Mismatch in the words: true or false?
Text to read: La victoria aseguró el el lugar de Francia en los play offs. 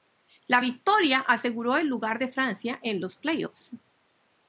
true